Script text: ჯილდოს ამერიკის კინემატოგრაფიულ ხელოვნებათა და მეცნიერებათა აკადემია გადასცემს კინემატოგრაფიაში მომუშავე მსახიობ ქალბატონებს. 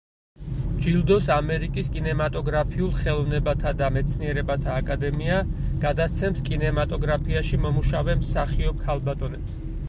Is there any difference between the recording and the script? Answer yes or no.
no